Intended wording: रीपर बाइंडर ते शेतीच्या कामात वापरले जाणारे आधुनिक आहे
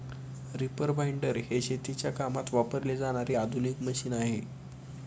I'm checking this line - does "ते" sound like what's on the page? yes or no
no